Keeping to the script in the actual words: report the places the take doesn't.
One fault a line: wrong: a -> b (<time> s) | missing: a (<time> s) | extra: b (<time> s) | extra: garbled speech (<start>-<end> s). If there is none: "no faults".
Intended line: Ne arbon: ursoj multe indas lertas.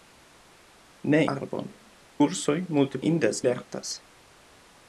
no faults